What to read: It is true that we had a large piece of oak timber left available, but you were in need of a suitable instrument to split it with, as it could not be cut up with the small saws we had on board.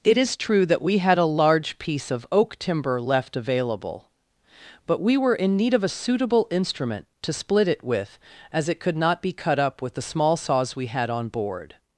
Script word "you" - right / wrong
wrong